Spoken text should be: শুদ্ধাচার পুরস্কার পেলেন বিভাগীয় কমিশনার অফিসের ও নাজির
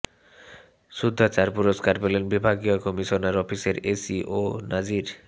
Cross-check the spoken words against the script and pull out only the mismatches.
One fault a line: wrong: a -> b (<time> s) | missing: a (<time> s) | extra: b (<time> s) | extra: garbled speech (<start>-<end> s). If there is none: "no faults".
extra: এসি (3.9 s)